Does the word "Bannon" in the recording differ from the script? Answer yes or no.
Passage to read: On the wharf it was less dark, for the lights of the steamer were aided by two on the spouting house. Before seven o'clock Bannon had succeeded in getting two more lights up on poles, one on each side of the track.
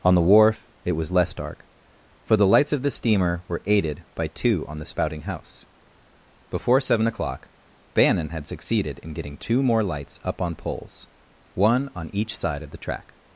no